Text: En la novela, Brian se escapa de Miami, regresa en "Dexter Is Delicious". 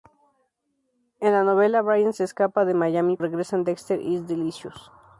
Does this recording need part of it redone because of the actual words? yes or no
no